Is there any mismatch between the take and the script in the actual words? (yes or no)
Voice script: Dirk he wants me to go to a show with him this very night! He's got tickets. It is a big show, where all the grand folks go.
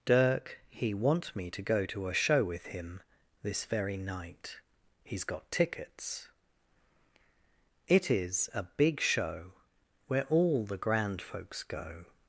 yes